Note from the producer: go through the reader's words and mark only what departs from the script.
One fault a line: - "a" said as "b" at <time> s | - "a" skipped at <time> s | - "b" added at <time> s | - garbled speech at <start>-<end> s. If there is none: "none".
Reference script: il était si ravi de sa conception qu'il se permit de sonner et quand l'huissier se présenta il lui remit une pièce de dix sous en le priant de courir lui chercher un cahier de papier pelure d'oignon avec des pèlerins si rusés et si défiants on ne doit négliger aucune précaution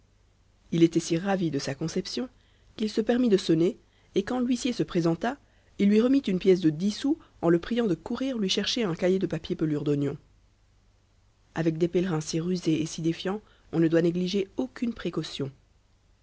none